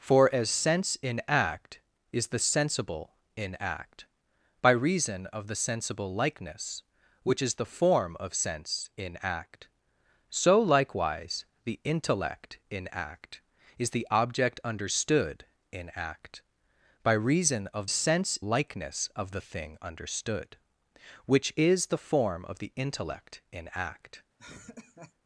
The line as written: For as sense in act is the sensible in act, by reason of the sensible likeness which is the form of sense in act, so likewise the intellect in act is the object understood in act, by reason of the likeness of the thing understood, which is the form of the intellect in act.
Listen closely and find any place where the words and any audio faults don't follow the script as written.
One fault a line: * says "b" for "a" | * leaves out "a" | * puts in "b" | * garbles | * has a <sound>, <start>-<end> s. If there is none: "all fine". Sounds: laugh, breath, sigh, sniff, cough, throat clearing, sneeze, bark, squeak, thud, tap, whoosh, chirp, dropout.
* says "sense" for "the"
* has a laugh, 24.4-25.1 s